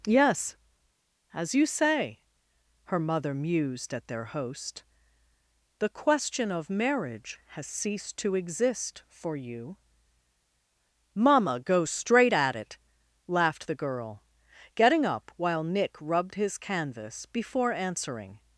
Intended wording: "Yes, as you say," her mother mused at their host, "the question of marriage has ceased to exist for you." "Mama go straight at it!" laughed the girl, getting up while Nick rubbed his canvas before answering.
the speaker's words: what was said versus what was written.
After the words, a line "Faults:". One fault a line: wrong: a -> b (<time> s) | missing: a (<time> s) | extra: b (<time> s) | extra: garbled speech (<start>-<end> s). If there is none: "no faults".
"Yes, as you say," her mother mused at their host, "the question of marriage has ceased to exist for you." "Mama go straight at it!" laughed the girl, getting up while Nick rubbed his canvas before answering.
Faults:
no faults